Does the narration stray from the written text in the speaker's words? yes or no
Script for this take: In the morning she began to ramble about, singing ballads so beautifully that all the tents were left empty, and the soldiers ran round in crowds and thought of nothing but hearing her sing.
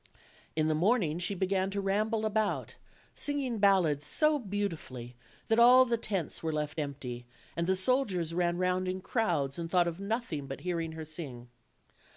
no